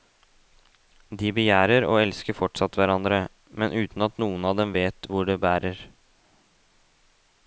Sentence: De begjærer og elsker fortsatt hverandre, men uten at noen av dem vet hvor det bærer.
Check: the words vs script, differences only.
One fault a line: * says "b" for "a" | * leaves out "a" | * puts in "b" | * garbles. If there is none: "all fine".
all fine